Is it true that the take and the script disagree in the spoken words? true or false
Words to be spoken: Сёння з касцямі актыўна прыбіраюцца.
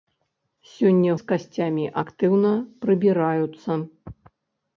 false